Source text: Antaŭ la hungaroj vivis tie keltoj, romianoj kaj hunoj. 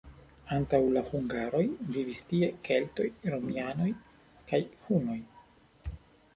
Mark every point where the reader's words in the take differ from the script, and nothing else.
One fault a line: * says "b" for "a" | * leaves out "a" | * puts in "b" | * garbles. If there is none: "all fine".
all fine